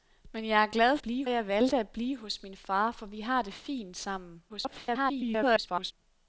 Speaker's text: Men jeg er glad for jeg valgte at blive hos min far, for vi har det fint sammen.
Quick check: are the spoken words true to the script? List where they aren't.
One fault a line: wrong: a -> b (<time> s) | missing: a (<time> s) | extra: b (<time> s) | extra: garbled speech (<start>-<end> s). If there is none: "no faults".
wrong: for -> blive (1.0 s)
extra: garbled speech (4.5-5.9 s)